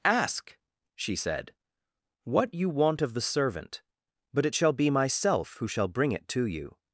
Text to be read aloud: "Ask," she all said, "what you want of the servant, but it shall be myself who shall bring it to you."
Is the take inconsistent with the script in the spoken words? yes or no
yes